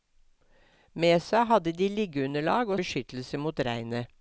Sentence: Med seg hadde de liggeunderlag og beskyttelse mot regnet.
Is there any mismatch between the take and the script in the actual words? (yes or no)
no